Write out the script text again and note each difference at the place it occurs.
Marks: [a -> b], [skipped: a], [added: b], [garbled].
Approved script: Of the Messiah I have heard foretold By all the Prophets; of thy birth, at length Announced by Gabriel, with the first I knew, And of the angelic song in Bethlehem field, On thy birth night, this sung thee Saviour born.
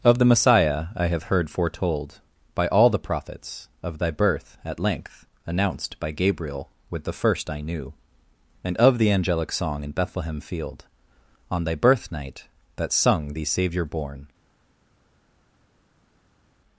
Of the Messiah I have heard foretold By all the Prophets; of thy birth, at length Announced by Gabriel, with the first I knew, And of the angelic song in Bethlehem field, On thy birth night, [this -> that] sung thee Saviour born.